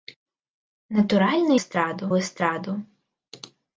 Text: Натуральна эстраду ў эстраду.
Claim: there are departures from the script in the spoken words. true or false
false